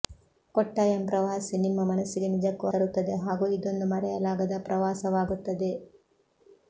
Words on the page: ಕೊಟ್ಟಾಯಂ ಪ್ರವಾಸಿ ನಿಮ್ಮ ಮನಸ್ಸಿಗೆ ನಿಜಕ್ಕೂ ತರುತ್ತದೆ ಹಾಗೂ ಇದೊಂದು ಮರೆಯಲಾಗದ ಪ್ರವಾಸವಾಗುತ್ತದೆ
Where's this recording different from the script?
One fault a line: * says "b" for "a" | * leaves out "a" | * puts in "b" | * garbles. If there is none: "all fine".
all fine